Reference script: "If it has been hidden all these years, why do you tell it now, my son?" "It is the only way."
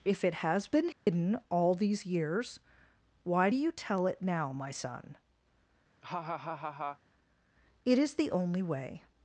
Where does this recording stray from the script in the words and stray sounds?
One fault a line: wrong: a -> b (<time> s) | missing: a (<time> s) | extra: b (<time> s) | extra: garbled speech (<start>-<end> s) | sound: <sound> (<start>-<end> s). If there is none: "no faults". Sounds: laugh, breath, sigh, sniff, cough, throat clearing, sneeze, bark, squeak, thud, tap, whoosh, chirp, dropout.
sound: dropout (0.9-1.1 s)
sound: laugh (6.0-7.0 s)